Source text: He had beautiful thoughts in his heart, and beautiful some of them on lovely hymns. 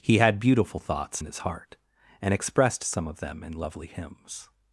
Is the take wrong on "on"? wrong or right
wrong